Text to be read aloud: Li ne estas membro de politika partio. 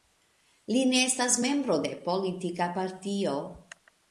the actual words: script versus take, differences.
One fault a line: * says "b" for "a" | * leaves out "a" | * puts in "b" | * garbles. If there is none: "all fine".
all fine